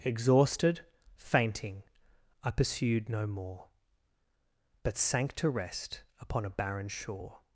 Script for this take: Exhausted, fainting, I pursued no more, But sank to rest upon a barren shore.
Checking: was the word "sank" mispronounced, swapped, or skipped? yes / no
no